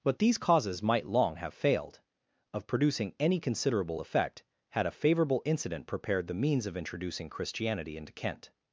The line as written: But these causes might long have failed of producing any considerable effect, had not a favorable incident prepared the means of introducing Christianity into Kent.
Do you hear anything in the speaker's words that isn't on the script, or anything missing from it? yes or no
yes